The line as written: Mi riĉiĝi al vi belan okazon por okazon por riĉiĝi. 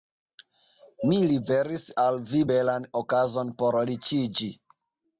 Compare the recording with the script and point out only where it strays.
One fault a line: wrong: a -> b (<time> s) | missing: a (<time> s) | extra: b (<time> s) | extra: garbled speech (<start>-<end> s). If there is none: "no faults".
wrong: riĉiĝi -> liveris (1.3 s)
missing: okazon por (3.8 s)